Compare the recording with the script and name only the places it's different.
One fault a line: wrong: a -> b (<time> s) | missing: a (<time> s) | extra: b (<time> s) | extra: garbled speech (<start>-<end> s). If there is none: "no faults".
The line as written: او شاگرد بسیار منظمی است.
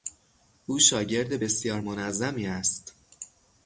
no faults